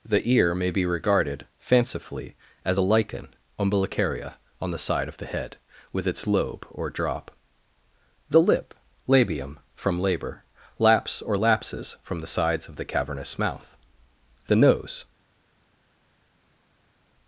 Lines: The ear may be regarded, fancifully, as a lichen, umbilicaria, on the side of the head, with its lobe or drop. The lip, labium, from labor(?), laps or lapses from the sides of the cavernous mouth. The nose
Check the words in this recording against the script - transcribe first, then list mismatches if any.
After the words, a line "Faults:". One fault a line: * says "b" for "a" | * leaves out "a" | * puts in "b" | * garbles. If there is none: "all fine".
The ear may be regarded, fancifully, as a lichen, umbilicaria, on the side of the head, with its lobe or drop. The lip, labium, from labor(?), laps or lapses from the sides of the cavernous mouth. The nose
Faults:
all fine